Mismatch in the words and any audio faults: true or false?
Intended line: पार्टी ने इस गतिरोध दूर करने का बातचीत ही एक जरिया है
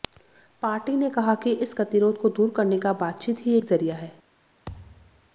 true